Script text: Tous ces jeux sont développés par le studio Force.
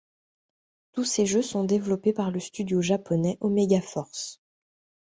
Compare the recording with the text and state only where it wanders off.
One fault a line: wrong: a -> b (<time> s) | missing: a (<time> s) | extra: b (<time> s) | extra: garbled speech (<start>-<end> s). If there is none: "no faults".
extra: japonais Omega (2.8 s)